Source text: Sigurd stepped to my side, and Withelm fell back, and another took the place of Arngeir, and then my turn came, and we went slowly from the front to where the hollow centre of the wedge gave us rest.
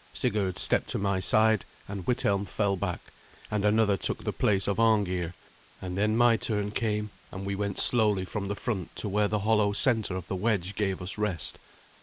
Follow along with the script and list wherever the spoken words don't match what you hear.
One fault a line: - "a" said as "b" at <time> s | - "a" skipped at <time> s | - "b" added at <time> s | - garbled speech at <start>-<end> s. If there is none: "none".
none